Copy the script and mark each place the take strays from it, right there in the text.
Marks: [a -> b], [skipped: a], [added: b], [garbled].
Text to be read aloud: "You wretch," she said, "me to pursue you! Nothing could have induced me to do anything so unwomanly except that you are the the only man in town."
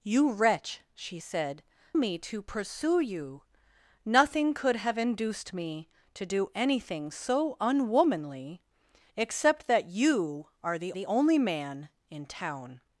"You wretch," she said, "me to pursue you! Nothing could have induced me to do anything so unwomanly except that you are the the only man in town."